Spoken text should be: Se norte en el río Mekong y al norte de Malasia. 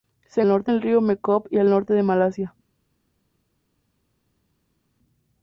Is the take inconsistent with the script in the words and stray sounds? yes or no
no